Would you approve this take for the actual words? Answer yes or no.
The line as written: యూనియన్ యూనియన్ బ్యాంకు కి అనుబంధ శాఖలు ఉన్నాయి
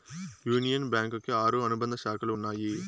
no